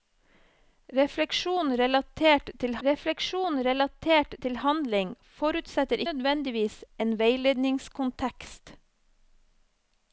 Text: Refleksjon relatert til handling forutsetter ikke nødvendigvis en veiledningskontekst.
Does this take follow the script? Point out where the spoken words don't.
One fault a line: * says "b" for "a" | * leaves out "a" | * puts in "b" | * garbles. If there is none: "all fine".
* puts in "refleksjon relatert til"
* leaves out "ikke"